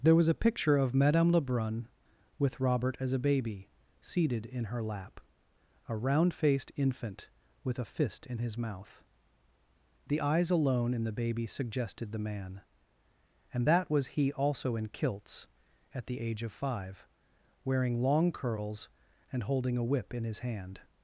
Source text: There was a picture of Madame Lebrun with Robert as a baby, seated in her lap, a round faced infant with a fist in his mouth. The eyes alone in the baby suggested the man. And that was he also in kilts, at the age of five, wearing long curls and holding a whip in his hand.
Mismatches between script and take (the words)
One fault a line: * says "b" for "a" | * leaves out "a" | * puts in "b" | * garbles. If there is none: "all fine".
all fine